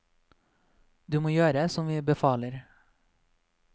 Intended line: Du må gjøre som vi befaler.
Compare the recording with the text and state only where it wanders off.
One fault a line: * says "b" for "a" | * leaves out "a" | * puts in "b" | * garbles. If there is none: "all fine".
all fine